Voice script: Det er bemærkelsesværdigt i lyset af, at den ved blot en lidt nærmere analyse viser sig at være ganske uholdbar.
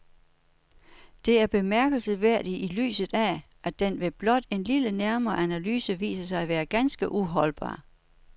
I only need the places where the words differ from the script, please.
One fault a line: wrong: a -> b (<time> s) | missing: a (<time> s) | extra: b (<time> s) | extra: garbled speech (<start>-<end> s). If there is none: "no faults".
no faults